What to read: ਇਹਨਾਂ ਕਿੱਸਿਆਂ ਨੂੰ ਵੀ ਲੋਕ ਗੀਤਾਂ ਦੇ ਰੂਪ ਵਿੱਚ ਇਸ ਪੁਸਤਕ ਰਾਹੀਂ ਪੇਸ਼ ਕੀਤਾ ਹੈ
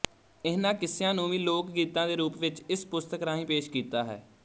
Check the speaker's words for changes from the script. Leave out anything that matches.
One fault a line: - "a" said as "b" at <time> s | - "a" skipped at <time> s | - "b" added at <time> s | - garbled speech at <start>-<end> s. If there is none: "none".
none